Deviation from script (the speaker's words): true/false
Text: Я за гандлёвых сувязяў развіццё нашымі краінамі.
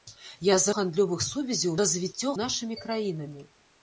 false